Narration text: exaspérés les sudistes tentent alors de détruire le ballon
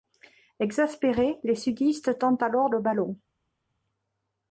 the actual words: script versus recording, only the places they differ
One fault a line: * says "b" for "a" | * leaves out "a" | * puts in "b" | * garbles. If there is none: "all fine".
* leaves out "de détruire"